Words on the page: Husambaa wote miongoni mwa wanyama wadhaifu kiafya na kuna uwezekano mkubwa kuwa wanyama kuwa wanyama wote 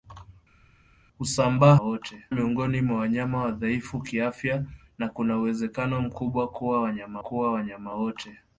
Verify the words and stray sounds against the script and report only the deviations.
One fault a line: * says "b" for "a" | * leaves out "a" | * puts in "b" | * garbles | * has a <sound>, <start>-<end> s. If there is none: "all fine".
all fine